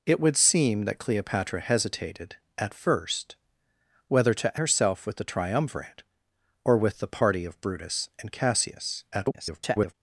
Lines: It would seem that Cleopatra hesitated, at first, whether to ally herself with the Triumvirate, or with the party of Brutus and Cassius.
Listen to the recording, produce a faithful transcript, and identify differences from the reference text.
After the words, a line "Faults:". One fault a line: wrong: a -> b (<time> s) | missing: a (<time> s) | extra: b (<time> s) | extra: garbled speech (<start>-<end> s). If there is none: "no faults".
It would seem that Cleopatra hesitated, at first, whether to herself with the Triumvirate, or with the party of Brutus and Cassius. [garbled]
Faults:
missing: ally (4.6 s)
extra: garbled speech (9.1-9.9 s)